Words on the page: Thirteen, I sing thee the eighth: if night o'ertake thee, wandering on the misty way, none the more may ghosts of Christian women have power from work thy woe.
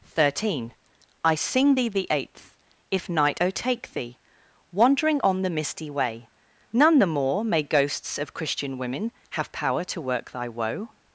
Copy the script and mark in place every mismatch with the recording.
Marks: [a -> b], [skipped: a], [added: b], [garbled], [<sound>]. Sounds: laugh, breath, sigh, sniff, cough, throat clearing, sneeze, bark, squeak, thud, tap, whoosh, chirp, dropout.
Thirteen, I sing thee the eighth: if night o'ertake thee, wandering on the misty way, none the more may ghosts of Christian women have power [from -> to] work thy woe.